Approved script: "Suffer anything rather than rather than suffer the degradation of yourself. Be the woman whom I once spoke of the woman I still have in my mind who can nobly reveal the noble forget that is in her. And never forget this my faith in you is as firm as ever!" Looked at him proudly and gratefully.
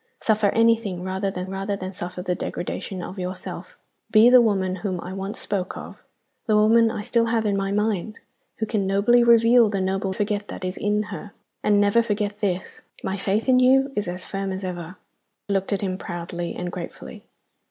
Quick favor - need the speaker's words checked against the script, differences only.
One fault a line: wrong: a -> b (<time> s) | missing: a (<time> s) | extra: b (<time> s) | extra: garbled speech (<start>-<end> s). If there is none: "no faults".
no faults